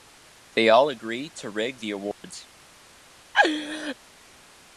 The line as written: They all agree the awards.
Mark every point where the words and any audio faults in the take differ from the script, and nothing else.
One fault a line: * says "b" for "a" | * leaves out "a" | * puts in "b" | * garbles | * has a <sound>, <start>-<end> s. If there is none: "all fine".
* puts in "to rig"
* has a dropout, 2.1-2.2 s
* has a laugh, 3.3-3.9 s